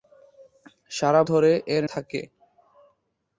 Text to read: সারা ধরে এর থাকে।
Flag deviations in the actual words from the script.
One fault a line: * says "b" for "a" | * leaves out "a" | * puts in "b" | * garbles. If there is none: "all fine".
all fine